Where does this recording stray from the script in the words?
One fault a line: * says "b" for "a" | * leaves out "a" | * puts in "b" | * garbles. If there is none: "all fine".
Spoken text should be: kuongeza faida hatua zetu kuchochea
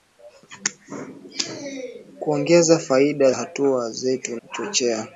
all fine